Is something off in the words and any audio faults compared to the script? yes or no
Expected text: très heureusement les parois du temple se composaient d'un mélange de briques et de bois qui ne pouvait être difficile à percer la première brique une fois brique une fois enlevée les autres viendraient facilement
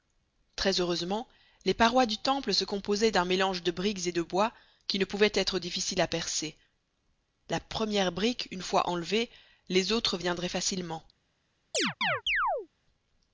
yes